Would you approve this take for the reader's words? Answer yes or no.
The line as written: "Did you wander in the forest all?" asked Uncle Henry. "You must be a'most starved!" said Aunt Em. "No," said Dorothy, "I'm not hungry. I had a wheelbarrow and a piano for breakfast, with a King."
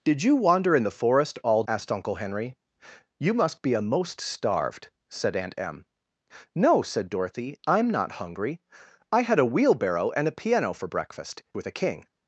yes